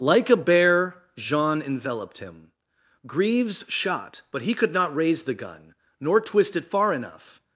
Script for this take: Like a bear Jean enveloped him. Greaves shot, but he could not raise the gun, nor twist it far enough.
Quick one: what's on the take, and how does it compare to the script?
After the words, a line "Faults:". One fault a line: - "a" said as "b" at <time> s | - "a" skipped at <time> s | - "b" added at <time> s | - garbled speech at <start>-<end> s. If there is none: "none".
Like a bear Jean enveloped him. Greaves shot, but he could not raise the gun, nor twist it far enough.
Faults:
none